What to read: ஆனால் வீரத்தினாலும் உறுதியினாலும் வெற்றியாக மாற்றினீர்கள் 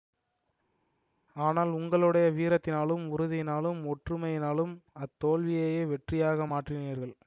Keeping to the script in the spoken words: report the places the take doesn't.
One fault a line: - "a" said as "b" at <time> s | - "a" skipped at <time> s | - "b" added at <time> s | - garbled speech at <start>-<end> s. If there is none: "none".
- "உங்களுடைய" added at 1.7 s
- "ஒற்றுமையினாலும் அத்தோல்வியையே" added at 3.9 s